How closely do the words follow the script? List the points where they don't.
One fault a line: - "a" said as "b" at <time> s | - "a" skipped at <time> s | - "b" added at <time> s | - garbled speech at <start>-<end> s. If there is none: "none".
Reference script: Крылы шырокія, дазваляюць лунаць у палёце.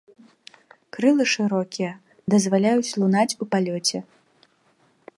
none